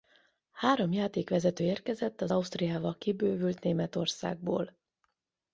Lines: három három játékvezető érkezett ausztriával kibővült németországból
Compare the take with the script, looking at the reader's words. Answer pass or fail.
fail